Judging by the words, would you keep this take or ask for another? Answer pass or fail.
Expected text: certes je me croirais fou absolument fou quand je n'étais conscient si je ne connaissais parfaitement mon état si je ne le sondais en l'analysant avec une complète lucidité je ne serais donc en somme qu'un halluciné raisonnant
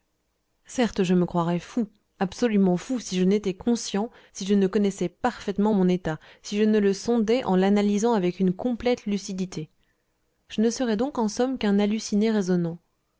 fail